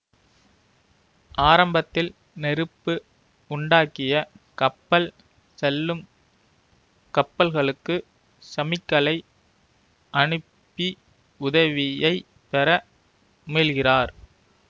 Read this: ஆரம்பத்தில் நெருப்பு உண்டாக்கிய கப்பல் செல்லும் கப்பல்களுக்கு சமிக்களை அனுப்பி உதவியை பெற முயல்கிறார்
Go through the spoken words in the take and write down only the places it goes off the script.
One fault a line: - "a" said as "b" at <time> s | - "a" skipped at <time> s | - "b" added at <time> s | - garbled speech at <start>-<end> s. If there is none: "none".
none